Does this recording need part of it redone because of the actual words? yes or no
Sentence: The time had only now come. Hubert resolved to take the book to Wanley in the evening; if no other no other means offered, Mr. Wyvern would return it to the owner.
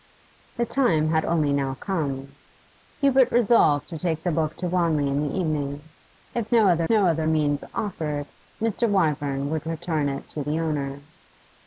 no